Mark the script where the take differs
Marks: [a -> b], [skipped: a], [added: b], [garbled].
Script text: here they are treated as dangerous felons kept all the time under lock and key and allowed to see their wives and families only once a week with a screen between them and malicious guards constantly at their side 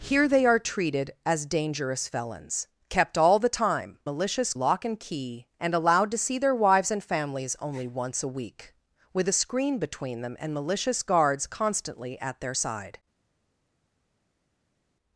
here they are treated as dangerous felons kept all the time [under -> malicious] lock and key and allowed to see their wives and families only once a week with a screen between them and malicious guards constantly at their side